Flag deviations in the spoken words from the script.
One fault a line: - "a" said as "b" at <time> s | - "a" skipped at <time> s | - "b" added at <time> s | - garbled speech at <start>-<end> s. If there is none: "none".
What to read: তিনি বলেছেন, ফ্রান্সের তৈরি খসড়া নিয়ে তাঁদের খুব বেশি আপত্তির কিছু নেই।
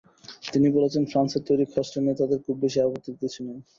none